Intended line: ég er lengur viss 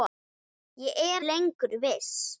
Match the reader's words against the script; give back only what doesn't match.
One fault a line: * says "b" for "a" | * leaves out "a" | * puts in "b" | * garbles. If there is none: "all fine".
all fine